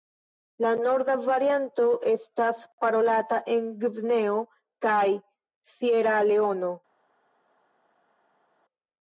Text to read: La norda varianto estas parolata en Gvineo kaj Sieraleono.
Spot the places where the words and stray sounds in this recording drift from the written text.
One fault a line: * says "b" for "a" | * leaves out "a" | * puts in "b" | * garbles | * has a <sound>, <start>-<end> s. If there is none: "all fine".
all fine